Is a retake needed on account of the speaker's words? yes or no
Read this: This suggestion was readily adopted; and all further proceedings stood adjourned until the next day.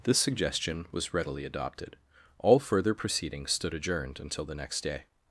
yes